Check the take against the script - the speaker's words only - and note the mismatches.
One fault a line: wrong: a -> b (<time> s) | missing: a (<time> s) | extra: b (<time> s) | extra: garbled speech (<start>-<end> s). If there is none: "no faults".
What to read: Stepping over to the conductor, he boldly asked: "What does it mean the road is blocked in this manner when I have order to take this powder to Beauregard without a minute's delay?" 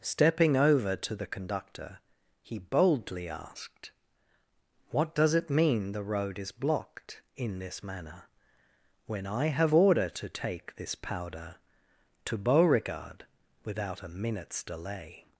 no faults